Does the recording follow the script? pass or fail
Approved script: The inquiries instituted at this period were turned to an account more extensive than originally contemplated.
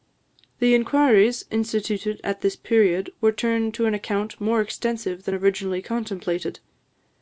pass